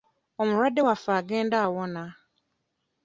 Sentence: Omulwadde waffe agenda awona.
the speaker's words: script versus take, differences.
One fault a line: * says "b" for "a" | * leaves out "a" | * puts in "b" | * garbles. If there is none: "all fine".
all fine